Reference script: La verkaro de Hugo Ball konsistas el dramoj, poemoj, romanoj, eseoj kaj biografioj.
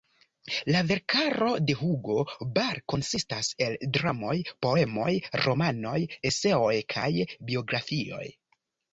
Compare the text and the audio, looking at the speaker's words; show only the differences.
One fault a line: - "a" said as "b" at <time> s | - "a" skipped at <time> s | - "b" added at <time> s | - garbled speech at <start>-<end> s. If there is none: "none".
none